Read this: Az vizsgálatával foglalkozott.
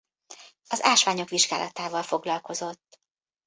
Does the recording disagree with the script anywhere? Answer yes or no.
yes